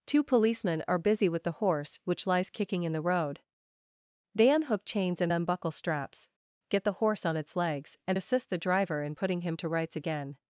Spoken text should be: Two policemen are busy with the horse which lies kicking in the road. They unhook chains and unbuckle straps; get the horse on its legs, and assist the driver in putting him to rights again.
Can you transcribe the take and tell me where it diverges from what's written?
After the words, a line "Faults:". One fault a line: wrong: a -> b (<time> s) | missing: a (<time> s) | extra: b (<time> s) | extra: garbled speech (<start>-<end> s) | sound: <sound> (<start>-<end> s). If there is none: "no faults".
Two policemen are busy with the horse which lies kicking in the road. They unhook chains and unbuckle straps; get the horse on its legs, and assist the driver in putting him to rights again.
Faults:
no faults